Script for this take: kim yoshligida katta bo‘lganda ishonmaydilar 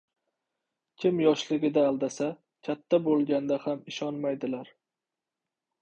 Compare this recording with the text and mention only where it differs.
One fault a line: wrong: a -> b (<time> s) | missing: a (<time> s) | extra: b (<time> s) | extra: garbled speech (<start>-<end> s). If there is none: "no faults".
extra: aldasa (1.9 s)
extra: ham (3.7 s)